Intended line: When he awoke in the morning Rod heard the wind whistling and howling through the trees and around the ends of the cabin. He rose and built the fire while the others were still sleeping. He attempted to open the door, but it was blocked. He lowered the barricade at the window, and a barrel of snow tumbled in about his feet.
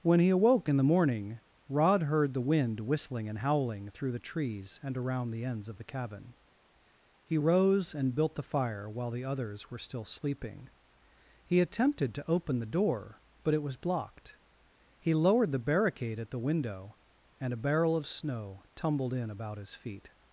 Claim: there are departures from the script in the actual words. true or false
false